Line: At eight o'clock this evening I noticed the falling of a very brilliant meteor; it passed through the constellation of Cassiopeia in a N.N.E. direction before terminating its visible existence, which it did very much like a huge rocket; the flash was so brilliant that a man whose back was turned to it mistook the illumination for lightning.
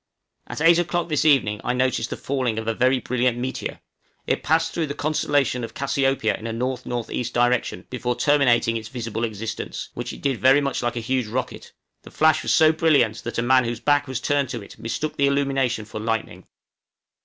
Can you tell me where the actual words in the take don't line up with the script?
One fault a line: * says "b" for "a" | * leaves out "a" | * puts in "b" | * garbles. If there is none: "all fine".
all fine